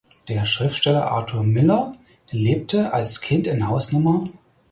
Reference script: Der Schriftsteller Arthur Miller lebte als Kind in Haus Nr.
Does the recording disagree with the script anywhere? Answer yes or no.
no